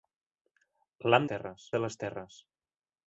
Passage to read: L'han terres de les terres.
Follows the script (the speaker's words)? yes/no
yes